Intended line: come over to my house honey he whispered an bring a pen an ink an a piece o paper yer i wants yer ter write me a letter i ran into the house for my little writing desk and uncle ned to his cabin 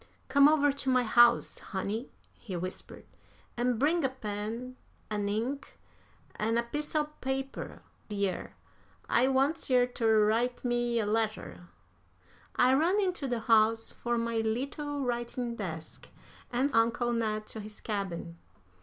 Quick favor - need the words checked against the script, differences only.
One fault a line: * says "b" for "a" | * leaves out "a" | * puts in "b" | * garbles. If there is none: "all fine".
all fine